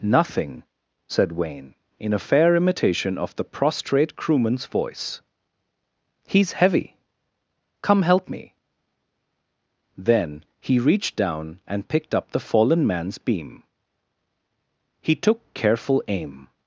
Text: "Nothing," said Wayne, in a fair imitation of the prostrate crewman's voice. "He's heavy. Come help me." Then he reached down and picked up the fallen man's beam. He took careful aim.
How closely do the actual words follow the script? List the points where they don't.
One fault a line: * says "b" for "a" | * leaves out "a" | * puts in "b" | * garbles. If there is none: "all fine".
all fine